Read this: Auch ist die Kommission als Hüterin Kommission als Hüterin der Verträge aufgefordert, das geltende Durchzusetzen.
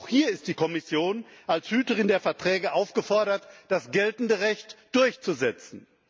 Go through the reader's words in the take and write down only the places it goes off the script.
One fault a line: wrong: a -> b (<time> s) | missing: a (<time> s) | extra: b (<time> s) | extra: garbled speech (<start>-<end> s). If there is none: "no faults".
extra: hier (0.1 s)
missing: Kommission als Hüterin (2.1 s)
extra: Recht (4.4 s)